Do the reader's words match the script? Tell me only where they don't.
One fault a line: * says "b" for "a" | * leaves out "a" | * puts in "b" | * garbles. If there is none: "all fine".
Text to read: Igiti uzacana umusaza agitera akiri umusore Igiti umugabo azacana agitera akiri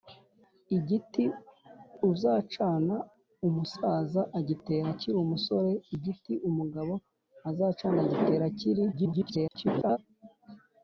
* garbles